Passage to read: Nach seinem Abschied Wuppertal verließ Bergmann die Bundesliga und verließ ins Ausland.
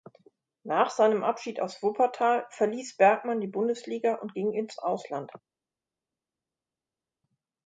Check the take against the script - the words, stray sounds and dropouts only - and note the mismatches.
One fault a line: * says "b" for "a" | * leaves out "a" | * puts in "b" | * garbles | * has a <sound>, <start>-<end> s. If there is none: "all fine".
* puts in "aus"
* says "ging" for "verließ"